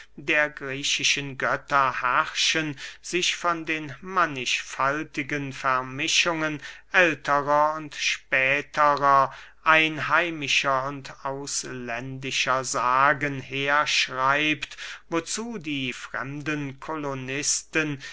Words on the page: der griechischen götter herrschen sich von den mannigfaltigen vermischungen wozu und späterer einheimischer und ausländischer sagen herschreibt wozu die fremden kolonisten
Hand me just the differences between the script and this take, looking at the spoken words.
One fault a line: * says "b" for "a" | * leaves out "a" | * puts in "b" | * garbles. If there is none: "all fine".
* says "älterer" for "wozu"